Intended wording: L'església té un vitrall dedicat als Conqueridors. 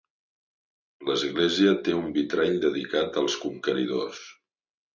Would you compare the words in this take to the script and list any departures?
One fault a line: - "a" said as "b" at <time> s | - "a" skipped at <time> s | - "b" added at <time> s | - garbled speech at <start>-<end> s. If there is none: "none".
none